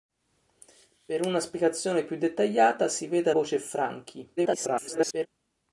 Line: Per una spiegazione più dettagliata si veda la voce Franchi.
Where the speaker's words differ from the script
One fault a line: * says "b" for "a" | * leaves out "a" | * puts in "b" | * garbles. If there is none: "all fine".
* leaves out "la"
* garbles